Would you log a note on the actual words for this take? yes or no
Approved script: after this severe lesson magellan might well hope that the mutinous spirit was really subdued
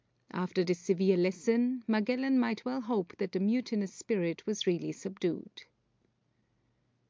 no